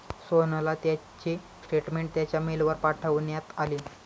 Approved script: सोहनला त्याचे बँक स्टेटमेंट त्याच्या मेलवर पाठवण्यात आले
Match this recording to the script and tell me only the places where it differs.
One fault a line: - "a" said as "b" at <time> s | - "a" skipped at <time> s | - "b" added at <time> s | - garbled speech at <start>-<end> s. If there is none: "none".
- "बँक" skipped at 1.4 s